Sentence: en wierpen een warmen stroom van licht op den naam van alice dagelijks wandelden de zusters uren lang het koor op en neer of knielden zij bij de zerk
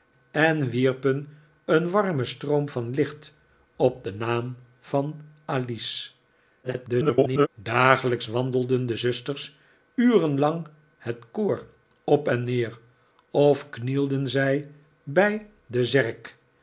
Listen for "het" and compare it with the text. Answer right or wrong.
right